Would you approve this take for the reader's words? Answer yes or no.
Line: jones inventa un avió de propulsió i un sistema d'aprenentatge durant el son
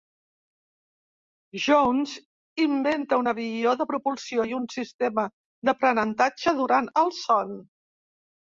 yes